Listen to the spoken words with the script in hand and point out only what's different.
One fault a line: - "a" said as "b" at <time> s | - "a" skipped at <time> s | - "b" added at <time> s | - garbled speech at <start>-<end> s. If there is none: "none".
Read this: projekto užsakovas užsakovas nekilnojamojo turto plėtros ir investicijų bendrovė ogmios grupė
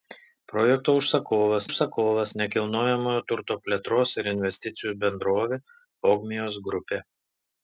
none